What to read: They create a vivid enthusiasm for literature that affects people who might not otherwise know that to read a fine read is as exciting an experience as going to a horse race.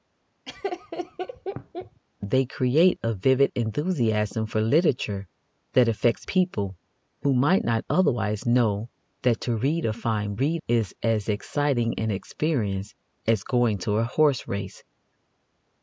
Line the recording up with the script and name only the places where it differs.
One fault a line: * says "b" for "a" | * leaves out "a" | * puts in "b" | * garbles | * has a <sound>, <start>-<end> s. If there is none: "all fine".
* has a laugh, 0.4-2.0 s